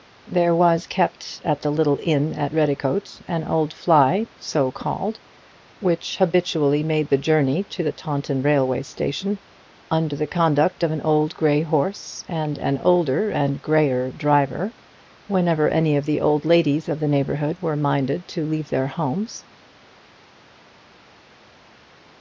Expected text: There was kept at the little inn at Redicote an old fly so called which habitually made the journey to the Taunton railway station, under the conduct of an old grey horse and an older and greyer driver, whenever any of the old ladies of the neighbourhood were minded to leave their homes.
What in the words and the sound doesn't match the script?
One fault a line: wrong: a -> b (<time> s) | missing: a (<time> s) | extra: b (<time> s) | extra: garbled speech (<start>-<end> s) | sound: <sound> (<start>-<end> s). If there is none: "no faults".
no faults